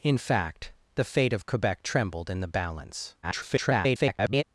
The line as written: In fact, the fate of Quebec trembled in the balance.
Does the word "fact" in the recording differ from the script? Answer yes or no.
no